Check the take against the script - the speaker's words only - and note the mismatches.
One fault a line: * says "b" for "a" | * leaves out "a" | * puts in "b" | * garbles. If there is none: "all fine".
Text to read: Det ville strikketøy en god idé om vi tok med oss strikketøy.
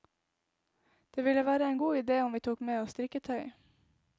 * says "være" for "strikketøy"